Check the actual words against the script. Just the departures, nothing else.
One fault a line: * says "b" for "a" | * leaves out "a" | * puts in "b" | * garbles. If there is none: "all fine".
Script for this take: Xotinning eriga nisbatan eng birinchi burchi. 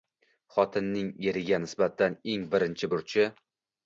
all fine